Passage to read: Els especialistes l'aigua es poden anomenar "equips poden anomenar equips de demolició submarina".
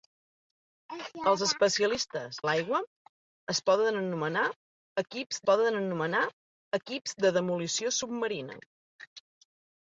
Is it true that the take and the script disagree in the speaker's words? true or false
false